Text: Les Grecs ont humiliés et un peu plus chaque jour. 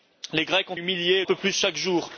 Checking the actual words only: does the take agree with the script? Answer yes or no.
yes